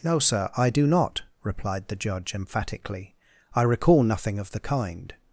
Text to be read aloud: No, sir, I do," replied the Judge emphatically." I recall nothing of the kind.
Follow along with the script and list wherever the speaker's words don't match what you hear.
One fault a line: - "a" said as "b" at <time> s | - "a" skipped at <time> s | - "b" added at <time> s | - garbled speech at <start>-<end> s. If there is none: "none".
- "not" added at 0.9 s